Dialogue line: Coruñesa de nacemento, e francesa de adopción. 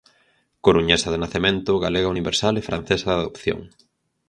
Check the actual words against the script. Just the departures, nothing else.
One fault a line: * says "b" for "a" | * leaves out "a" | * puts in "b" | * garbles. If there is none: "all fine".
* puts in "galega universal"